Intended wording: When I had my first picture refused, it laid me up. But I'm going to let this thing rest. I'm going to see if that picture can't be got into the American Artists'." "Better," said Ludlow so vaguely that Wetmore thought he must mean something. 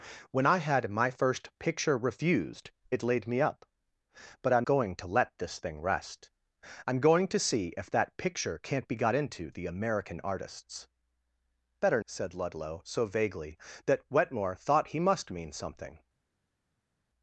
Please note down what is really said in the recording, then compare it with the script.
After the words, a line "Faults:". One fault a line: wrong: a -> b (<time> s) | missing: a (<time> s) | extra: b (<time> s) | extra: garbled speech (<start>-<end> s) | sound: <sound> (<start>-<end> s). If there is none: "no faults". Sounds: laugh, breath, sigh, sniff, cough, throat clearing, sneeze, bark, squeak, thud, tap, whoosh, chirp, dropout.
When I had my first picture refused, it laid me up. But I'm going to let this thing rest. I'm going to see if that picture can't be got into the American Artists'." "Better," said Ludlow so vaguely that Wetmore thought he must mean something.
Faults:
no faults